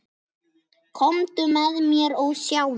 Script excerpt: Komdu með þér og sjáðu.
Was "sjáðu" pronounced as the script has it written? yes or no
yes